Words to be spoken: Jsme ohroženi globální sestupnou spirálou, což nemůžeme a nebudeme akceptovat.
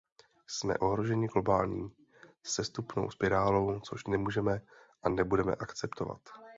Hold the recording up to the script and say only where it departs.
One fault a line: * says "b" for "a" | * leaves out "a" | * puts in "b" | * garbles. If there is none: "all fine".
all fine